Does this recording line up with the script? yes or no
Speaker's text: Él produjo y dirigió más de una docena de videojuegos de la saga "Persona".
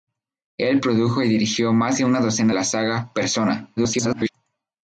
no